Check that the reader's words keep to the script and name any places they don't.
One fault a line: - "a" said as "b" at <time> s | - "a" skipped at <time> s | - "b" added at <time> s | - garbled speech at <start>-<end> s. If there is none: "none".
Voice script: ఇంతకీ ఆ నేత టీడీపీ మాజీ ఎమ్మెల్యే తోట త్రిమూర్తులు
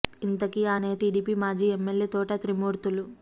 none